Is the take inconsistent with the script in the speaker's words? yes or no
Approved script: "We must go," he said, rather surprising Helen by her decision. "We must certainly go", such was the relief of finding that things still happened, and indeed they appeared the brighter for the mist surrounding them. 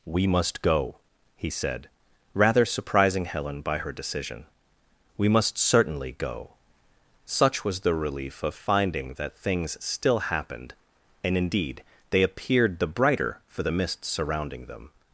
no